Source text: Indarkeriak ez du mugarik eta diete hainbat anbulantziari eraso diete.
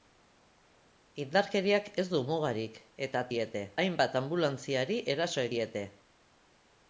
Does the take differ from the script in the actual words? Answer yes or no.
no